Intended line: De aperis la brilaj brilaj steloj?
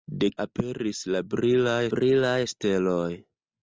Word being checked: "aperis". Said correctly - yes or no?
yes